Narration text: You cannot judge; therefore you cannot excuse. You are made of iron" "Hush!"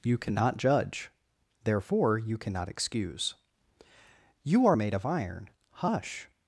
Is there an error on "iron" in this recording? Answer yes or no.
no